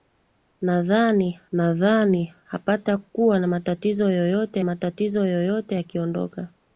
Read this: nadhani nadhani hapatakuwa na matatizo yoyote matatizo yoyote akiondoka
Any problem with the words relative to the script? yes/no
no